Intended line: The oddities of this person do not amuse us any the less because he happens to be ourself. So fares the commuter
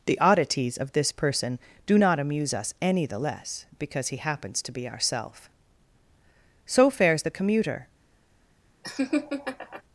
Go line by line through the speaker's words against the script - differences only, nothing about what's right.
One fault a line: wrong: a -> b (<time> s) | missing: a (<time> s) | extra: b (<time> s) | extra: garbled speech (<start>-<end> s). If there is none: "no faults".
no faults